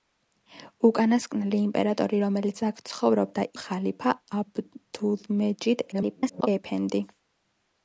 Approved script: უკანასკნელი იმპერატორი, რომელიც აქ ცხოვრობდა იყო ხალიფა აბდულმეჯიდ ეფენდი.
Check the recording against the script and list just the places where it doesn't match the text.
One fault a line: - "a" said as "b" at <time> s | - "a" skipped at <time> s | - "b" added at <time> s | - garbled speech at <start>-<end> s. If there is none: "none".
- "იყო" skipped at 3.5 s
- garbled speech at 5.9-6.5 s